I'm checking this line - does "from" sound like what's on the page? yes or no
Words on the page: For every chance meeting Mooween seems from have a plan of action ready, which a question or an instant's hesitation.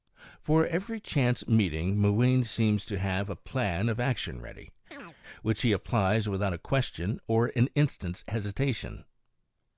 no